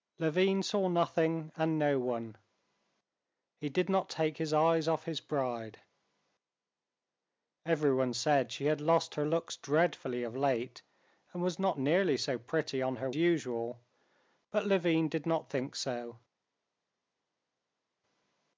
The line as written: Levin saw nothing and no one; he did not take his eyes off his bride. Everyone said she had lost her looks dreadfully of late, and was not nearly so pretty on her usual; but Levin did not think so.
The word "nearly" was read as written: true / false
true